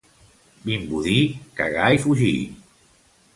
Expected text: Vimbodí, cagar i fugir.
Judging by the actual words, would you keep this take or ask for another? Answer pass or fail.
pass